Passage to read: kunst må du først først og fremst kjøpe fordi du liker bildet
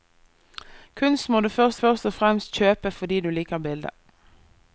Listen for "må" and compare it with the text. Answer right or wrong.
right